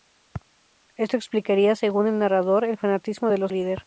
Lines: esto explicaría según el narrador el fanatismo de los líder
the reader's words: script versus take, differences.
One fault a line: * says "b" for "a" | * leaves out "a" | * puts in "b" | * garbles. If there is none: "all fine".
all fine